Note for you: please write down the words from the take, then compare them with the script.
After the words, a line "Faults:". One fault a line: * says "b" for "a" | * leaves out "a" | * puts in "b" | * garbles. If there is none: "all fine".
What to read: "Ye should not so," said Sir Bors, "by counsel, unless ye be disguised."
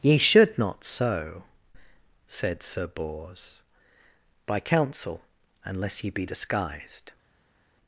"Ye should not so," said Sir Bors, "by counsel, unless ye be disguised."
Faults:
all fine